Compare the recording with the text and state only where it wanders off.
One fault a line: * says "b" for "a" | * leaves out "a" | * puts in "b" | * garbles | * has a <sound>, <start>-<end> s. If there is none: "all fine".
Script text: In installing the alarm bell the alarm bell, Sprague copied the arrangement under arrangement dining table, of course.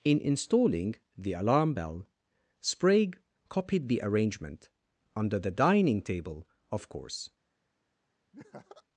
* leaves out "the alarm bell"
* says "the" for "arrangement"
* has a laugh, 8.3-8.8 s